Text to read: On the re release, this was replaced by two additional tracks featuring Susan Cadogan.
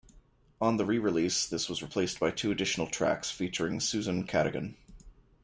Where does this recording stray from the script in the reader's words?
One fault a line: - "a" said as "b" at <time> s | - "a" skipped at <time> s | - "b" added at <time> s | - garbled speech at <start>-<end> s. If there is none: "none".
none